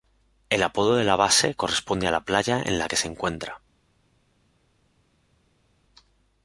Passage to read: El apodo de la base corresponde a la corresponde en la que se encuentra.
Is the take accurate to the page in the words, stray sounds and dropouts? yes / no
no